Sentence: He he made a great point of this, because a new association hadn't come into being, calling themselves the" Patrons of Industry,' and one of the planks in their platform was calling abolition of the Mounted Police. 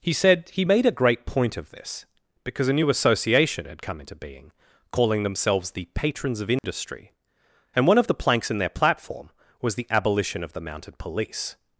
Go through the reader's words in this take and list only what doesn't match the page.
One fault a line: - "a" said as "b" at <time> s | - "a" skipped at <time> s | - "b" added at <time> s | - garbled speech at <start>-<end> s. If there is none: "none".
- "said" added at 0.1 s
- "hadn't" said as "had" at 3.6 s
- "calling" said as "the" at 9.8 s